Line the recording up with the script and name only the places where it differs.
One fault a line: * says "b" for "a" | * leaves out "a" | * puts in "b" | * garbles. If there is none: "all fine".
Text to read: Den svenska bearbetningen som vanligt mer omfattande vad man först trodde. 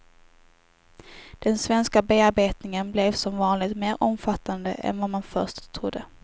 * puts in "blev"
* puts in "än"